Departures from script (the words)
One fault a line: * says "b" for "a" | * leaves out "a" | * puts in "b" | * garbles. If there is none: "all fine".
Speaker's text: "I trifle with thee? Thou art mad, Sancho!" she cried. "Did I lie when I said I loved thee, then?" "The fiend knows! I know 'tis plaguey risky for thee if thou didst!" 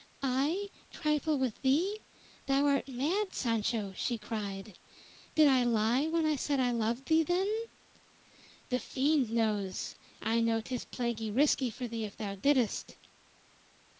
all fine